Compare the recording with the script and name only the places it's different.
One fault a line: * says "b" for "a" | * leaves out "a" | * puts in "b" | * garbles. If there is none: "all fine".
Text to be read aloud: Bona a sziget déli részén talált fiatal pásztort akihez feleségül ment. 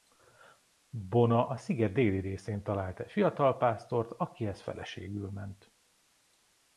* puts in "egy"